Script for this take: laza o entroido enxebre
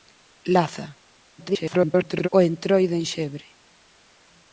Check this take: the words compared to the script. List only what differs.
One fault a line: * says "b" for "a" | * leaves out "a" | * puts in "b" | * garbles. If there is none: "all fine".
* garbles